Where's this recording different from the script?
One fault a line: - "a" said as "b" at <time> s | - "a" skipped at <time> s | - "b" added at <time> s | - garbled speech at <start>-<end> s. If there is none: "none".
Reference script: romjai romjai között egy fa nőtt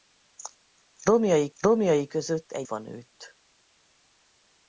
none